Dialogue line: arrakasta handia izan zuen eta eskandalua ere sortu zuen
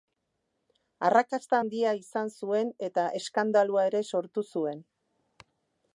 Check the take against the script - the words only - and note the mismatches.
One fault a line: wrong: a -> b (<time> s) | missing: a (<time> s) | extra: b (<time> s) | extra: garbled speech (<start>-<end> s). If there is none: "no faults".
no faults